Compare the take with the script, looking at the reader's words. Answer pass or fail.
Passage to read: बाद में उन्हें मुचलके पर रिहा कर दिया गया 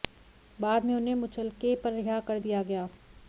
pass